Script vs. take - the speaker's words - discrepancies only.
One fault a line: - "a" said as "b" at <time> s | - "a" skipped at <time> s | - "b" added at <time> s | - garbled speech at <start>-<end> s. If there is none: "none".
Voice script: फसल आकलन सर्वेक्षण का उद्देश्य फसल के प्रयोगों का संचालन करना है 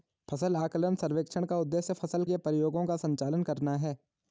none